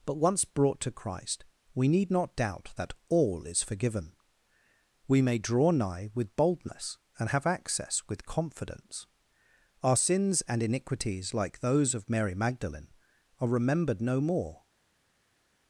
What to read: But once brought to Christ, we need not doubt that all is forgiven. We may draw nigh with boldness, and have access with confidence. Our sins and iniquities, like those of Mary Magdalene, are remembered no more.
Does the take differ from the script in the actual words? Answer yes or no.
no